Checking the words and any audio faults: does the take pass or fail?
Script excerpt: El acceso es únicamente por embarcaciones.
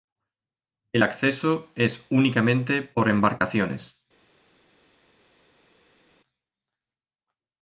pass